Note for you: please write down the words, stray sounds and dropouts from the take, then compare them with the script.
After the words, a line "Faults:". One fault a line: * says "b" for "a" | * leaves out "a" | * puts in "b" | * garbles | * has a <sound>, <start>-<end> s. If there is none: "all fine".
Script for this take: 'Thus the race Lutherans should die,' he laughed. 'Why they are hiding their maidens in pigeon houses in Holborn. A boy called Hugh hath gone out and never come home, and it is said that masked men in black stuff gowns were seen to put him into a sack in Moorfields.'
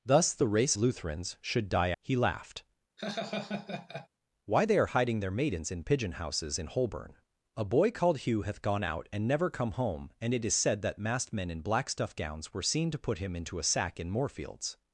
'Thus the race Lutherans should die,' he laughed. 'Why they are hiding their maidens in pigeon houses in Holborn. A boy called Hugh hath gone out and never come home, and it is said that masked men in black stuff gowns were seen to put him into a sack in Moorfields.'
Faults:
* has a laugh, 3.0-4.1 s